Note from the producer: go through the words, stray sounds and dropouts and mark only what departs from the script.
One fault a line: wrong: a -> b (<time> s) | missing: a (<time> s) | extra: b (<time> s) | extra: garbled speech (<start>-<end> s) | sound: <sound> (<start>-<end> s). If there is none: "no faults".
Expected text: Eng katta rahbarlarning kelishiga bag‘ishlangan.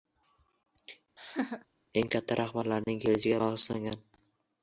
sound: laugh (1.2-1.7 s)